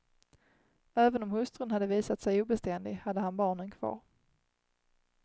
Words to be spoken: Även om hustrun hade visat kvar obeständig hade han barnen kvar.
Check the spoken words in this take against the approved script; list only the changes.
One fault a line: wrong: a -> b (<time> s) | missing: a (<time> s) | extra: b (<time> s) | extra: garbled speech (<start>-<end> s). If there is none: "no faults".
wrong: kvar -> sig (2.2 s)